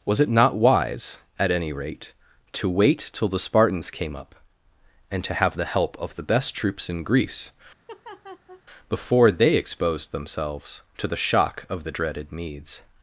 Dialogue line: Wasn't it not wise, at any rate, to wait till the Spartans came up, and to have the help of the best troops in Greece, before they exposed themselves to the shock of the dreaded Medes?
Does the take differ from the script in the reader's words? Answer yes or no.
yes